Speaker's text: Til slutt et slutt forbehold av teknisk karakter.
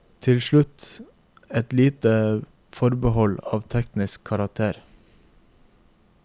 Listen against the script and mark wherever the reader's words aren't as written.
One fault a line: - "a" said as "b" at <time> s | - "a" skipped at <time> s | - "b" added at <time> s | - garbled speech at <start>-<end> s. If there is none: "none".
- "slutt" said as "lite" at 1.7 s